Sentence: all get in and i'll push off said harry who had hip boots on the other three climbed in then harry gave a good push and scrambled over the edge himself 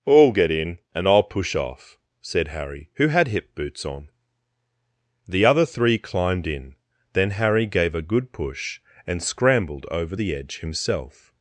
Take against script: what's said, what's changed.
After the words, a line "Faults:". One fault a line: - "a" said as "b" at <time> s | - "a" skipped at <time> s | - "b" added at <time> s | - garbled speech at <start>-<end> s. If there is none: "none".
all get in and i'll push off said harry who had hip boots on the other three climbed in then harry gave a good push and scrambled over the edge himself
Faults:
none